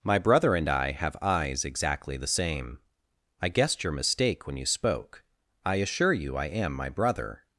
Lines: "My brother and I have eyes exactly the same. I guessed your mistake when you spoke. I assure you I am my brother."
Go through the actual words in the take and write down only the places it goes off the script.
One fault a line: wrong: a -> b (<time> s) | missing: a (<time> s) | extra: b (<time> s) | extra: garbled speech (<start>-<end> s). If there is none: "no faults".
no faults